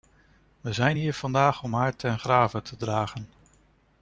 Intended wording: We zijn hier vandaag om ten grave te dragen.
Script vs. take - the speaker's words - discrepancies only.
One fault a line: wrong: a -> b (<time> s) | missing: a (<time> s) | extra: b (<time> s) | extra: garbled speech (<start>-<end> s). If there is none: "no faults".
extra: haar (1.7 s)